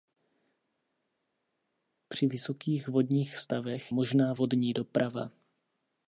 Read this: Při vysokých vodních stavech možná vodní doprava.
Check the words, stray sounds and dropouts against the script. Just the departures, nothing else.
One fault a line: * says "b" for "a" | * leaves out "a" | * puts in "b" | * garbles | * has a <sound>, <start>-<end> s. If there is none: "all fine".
all fine